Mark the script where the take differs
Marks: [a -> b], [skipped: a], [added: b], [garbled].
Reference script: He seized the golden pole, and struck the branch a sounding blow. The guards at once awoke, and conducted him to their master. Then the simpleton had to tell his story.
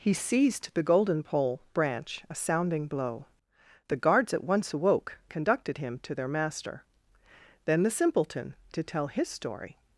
He seized the golden pole, [skipped: and struck the] branch a sounding blow. The guards at once awoke, [skipped: and] conducted him to their master. Then the simpleton [skipped: had] to tell his story.